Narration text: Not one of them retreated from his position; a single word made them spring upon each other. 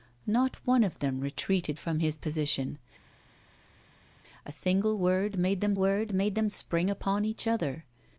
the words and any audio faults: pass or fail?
fail